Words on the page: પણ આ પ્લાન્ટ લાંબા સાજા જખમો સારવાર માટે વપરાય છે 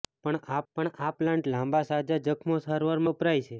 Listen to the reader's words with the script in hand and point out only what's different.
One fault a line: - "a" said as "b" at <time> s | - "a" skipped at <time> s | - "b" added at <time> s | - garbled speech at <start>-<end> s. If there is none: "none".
- "પણ આ" added at 0.7 s
- "માટે" skipped at 3.0 s